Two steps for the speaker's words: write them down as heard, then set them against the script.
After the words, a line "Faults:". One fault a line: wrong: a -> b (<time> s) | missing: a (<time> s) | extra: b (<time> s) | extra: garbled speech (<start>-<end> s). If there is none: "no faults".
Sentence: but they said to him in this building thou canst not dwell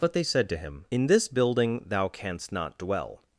but they said to him in this building thou canst not dwell
Faults:
no faults